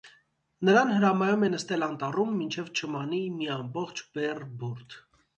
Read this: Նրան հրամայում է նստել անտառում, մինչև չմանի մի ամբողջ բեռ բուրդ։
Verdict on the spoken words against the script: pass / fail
pass